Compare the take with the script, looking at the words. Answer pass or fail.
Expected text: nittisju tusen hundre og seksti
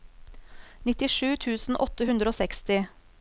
fail